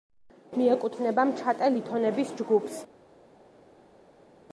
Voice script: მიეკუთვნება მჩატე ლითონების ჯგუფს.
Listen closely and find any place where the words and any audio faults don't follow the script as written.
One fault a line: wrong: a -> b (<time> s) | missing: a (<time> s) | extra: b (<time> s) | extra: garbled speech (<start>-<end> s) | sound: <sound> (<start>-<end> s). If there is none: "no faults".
no faults